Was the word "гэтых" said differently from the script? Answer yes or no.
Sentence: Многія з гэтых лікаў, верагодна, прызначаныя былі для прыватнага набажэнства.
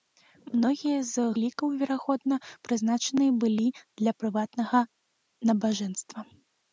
yes